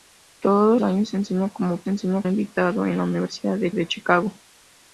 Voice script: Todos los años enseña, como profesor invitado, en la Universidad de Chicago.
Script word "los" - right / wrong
wrong